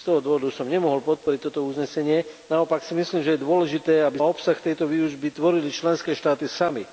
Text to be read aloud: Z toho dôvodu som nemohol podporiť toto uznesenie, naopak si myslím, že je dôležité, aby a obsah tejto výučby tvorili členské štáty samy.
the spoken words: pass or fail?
pass